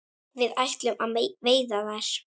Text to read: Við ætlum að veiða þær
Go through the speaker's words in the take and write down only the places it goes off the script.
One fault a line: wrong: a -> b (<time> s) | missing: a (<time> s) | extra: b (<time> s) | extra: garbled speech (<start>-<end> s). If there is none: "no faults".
no faults